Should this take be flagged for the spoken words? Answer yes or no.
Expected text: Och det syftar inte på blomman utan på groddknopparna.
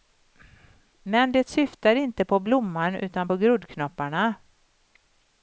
yes